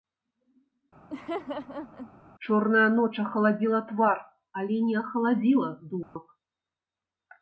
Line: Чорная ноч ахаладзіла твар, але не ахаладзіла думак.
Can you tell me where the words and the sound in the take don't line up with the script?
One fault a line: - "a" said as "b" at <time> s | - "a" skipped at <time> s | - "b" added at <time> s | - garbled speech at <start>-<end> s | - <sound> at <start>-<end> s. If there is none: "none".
- laugh at 1.1-2.2 s
- dropout at 6.0-6.2 s